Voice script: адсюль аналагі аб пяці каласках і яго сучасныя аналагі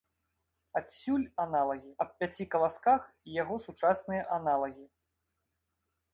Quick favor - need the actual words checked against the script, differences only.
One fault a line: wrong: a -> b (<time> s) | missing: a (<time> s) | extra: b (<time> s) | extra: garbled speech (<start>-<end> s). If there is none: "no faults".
no faults